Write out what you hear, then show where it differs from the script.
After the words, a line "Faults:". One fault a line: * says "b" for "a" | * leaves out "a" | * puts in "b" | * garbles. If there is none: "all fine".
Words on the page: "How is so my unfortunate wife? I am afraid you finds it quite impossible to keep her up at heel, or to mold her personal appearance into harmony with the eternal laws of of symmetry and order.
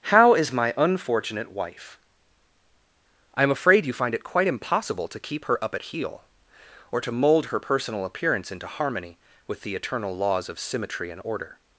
"How is my unfortunate wife? I am afraid you find it quite impossible to keep her up at heel, or to mold her personal appearance into harmony with the eternal laws of symmetry and order.
Faults:
* leaves out "so"
* says "find" for "finds"
* leaves out "of"